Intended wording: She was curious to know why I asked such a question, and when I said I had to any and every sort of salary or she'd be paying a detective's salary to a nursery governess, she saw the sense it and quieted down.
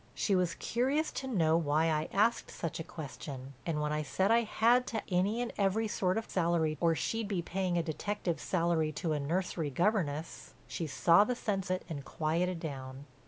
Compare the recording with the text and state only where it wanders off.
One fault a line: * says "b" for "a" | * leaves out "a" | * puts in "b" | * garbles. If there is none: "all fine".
all fine